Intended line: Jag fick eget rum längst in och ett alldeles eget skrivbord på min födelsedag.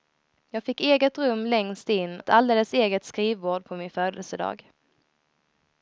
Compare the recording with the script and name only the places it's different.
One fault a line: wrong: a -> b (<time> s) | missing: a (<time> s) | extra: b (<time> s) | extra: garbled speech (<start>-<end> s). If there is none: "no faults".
missing: och (2.2 s)